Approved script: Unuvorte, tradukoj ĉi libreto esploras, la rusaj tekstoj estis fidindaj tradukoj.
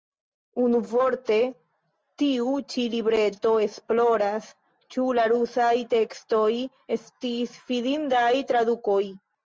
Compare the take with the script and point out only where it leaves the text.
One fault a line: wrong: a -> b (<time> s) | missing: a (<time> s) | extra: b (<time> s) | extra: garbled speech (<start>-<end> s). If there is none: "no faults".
wrong: tradukoj -> tiu (2.2 s)
extra: ĉu (5.0 s)